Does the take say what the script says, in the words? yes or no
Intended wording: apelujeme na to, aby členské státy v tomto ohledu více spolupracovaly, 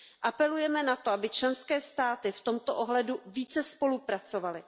yes